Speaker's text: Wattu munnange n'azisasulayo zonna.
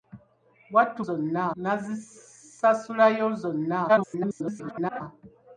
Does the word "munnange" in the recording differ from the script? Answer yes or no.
yes